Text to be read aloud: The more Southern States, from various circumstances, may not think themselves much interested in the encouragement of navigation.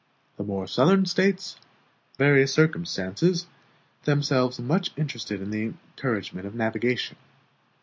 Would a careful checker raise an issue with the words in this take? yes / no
yes